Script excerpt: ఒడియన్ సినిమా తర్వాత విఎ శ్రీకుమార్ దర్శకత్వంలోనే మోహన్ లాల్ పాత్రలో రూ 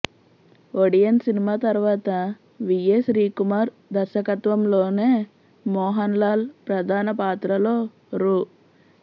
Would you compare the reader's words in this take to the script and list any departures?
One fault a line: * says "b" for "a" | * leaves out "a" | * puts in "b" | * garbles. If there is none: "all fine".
* puts in "ప్రధాన"